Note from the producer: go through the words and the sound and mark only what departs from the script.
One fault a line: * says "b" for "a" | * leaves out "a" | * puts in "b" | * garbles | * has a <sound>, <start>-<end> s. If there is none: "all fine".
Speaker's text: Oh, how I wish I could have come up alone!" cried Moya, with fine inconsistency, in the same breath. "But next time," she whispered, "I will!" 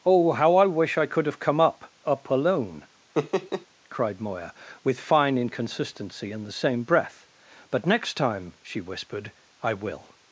* puts in "up"
* has a laugh, 3.1-3.7 s